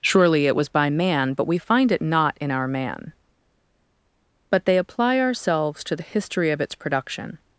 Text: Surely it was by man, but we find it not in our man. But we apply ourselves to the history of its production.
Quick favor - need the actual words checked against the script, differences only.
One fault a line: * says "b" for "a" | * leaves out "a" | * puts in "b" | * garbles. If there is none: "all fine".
* says "they" for "we"